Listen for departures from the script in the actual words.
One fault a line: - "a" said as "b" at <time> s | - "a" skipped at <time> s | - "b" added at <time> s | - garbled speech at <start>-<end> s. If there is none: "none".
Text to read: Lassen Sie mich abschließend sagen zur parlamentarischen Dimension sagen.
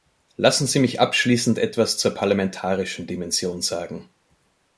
- "sagen" said as "etwas" at 1.6 s